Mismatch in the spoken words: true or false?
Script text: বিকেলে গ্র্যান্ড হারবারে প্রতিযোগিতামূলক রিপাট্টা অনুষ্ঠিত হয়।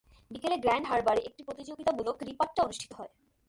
true